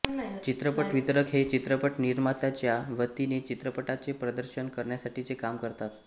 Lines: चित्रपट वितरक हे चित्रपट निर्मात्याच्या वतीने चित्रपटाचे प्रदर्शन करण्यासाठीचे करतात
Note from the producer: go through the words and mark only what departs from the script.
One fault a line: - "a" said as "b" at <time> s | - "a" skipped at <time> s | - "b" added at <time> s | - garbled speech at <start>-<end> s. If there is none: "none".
- "काम" added at 5.3 s